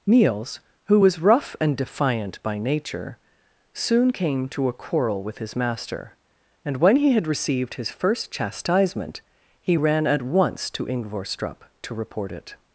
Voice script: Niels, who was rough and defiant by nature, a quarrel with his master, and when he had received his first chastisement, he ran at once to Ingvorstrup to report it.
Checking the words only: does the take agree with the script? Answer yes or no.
no